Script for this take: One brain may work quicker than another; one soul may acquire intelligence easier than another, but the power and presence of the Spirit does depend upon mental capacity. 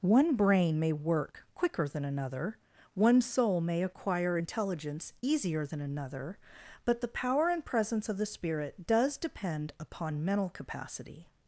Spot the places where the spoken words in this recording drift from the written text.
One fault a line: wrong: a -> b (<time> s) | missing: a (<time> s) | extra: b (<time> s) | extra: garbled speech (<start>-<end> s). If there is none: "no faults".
no faults